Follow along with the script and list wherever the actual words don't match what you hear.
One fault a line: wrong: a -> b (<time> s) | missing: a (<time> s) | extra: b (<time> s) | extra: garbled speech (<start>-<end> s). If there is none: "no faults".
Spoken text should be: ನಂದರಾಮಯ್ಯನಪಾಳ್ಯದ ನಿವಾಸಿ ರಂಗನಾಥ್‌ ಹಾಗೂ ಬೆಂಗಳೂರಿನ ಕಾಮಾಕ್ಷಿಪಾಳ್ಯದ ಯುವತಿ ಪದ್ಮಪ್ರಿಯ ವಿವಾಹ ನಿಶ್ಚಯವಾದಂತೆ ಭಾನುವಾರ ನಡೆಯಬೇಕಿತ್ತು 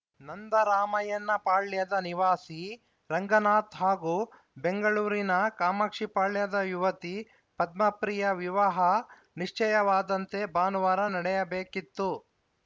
no faults